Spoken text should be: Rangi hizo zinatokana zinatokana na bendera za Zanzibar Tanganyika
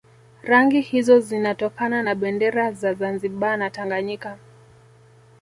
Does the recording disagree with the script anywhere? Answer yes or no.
yes